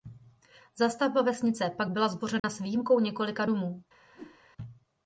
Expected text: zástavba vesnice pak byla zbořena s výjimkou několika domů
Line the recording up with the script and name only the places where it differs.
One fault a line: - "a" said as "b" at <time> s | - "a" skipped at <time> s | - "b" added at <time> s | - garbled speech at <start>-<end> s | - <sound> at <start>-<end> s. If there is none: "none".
- dropout at 2.4-2.4 s
- whoosh at 4.1-4.4 s